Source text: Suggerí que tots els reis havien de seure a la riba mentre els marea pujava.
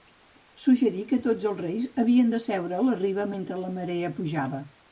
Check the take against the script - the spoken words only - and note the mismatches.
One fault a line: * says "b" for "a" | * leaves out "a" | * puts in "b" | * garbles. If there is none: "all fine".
* says "la" for "els"